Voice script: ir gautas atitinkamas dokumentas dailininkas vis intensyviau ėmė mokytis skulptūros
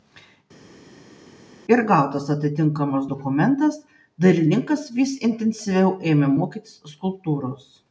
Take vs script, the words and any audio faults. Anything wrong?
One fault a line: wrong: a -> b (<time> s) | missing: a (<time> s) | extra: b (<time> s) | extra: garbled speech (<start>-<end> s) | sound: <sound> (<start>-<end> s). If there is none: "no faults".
no faults